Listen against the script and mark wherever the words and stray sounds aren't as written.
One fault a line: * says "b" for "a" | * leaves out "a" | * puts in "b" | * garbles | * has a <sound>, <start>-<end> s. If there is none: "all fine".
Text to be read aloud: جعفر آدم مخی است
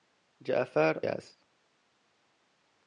* leaves out "آدم مخی"